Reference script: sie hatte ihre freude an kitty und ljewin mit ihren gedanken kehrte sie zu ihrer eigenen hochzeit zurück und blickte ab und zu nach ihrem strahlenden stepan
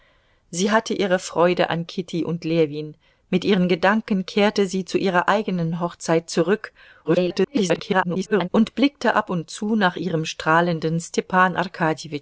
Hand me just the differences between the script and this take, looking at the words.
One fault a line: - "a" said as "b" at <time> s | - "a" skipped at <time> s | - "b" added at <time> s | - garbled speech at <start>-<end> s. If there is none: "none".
- garbled speech at 7.0-8.5 s